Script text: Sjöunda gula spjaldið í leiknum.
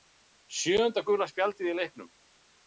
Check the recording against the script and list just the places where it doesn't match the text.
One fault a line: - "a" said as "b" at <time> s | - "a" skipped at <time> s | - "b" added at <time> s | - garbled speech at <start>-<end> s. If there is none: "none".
none